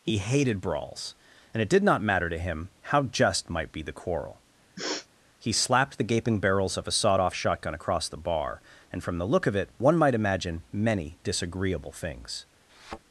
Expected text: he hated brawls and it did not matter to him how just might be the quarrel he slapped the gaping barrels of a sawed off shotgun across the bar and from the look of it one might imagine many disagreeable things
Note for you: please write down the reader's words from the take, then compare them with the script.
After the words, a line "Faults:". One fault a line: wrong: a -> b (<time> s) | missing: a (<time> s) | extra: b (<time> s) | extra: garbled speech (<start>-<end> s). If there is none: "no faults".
he hated brawls and it did not matter to him how just might be the quarrel he slapped the gaping barrels of a sawed off shotgun across the bar and from the look of it one might imagine many disagreeable things
Faults:
no faults